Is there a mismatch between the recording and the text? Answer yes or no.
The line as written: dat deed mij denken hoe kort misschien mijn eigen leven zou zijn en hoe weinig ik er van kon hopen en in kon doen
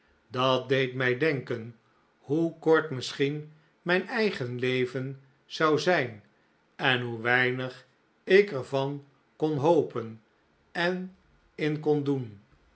no